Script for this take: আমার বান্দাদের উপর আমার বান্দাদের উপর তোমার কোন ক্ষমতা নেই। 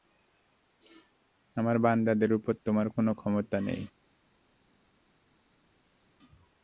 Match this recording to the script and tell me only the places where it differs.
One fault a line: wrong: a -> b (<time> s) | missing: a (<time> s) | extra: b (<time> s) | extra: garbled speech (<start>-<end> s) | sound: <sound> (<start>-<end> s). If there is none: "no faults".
missing: আমার বান্দাদের উপর (2.5 s)